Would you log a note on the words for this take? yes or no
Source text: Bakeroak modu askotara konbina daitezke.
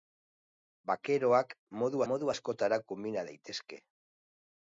yes